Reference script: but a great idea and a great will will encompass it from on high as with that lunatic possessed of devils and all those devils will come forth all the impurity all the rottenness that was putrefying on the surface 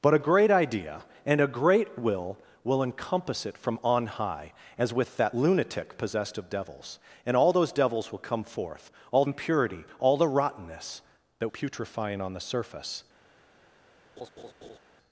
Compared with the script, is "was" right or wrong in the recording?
wrong